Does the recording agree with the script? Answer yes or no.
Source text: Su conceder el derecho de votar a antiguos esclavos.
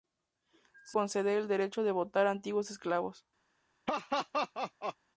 yes